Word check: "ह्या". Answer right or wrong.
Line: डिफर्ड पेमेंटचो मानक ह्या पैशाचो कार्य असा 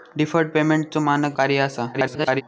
wrong